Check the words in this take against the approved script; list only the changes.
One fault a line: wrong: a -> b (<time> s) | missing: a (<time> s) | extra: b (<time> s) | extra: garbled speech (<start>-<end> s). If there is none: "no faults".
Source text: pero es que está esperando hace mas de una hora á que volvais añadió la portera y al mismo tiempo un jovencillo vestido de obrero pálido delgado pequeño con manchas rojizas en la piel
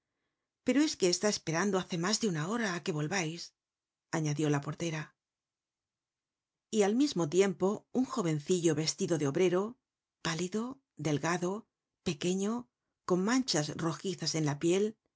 no faults